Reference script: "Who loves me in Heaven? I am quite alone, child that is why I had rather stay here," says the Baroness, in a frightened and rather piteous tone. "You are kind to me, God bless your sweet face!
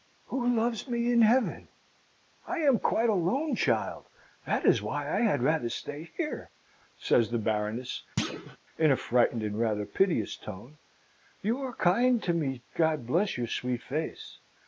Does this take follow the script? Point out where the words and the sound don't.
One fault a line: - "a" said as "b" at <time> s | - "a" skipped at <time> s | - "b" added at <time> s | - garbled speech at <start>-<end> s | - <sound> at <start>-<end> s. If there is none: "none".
- thud at 8.2-8.6 s